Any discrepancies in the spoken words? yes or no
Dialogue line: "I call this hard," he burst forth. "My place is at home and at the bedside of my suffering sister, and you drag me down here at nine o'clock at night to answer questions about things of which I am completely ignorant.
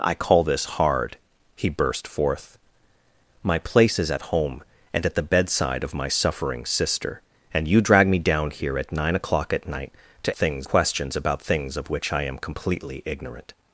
yes